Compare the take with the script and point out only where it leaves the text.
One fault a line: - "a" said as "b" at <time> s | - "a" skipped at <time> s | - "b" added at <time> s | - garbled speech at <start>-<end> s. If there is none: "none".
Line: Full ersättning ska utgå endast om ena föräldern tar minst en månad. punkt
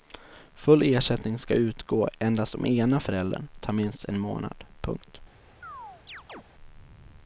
none